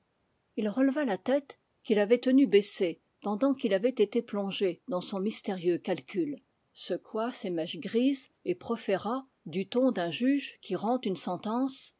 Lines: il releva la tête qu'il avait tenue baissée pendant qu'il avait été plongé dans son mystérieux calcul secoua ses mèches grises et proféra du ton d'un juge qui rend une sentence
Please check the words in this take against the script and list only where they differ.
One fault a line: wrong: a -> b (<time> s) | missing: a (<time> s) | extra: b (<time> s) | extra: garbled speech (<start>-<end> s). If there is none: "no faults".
no faults